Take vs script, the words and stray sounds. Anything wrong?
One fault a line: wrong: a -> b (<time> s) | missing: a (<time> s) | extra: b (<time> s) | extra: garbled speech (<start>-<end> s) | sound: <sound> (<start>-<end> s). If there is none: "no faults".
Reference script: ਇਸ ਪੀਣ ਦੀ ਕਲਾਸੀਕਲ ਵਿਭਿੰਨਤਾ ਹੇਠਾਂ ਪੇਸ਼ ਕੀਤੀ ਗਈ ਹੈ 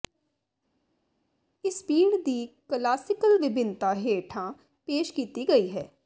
no faults